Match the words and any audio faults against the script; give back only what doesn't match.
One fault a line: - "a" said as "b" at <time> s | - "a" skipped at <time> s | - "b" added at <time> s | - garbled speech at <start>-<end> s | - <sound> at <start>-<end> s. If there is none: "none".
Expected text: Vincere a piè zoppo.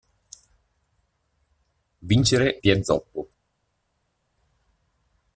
- "a" skipped at 2.6 s